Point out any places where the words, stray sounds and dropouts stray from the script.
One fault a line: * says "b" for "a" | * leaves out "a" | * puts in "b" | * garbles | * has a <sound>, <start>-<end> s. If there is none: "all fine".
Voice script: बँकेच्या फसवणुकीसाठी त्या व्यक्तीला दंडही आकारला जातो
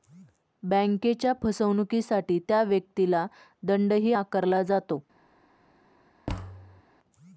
* has a thud, 6.3-6.8 s